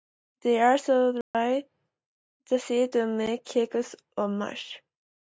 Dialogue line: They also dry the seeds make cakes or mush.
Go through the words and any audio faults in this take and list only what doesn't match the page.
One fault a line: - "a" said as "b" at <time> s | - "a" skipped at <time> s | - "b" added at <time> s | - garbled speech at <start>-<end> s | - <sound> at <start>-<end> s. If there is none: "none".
- dropout at 1.2-1.3 s
- "to" added at 2.9 s